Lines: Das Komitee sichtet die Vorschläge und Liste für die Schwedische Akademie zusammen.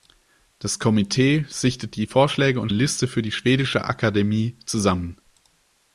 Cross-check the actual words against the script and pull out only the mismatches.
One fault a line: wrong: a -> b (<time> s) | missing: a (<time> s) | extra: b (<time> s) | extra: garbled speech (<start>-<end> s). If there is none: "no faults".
no faults